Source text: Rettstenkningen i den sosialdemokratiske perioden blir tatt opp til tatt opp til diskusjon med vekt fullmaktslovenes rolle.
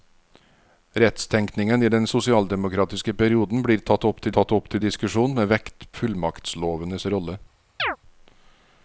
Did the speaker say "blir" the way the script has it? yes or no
yes